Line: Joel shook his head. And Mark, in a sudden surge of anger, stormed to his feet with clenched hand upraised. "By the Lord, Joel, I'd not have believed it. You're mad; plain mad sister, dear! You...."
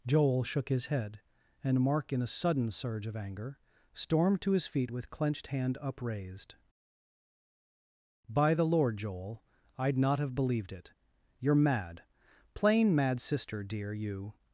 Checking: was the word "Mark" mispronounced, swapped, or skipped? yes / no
no